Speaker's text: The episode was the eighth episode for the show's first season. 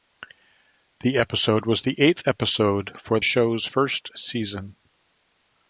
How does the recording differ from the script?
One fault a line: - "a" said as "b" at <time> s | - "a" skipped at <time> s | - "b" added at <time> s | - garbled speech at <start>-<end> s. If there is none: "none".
- "the" skipped at 3.2 s